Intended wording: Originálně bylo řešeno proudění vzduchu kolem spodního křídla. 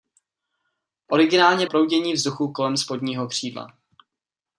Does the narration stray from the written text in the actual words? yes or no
yes